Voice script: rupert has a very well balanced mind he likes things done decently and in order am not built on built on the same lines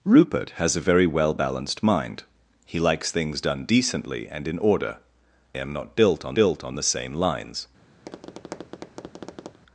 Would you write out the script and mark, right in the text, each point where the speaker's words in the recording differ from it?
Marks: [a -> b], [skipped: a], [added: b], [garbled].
rupert has a very well balanced mind he likes things done decently and in order am not built on built on the same lines